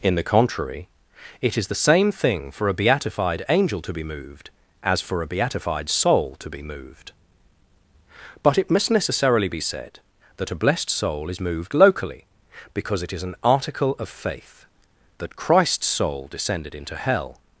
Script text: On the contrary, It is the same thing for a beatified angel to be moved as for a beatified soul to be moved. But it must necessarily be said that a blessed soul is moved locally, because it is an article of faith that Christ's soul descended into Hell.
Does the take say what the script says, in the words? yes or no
no